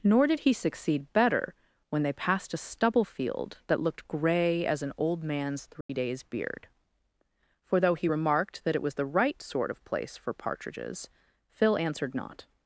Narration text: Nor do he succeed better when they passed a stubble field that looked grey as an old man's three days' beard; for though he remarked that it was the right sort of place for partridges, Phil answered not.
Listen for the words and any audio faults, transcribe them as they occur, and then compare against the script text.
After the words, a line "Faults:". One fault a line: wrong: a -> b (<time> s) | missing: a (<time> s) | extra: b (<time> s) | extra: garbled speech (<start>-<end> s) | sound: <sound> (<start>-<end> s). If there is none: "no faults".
Nor did he succeed better when they passed a stubble field that looked grey as an old man's three days' beard; for though he remarked that it was the right sort of place for partridges, Phil answered not.
Faults:
wrong: do -> did (0.3 s)
sound: dropout (5.8-5.9 s)